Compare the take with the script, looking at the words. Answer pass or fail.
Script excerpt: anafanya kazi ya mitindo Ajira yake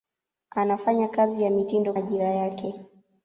pass